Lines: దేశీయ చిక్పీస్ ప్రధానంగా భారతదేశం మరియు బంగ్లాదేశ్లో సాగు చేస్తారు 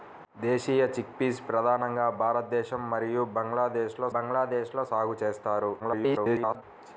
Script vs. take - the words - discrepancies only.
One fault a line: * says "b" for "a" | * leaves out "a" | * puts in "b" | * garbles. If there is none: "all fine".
* puts in "బంగ్లాదేశ్లో"
* garbles